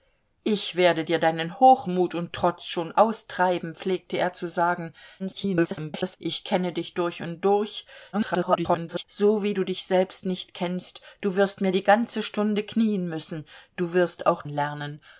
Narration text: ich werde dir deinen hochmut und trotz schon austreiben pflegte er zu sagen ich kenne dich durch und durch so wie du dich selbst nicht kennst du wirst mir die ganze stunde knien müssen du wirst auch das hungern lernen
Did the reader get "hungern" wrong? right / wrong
wrong